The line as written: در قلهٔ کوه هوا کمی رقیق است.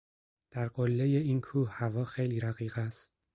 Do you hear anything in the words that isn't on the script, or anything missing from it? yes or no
yes